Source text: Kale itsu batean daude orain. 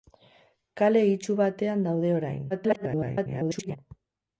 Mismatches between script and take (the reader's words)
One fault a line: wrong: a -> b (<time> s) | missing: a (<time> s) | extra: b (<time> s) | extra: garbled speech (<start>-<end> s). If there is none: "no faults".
extra: garbled speech (2.5-3.8 s)